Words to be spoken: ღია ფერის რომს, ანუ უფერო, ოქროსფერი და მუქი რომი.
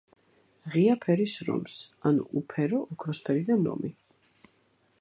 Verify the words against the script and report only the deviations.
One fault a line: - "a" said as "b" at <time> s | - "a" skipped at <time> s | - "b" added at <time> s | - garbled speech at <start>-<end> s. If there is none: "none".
- "მუქი" skipped at 3.6 s